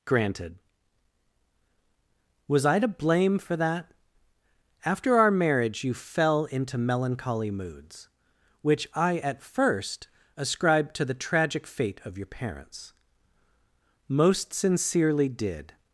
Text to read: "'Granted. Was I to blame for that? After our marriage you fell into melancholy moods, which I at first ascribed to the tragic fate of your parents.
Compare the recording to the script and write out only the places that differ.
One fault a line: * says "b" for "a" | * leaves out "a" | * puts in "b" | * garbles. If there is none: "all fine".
* puts in "Most sincerely did"